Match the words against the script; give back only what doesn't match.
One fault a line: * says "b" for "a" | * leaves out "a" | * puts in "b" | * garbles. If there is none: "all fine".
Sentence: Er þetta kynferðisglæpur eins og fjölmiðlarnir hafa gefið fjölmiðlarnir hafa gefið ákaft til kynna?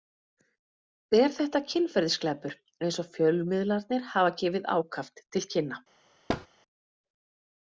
* leaves out "fjölmiðlarnir hafa gefið"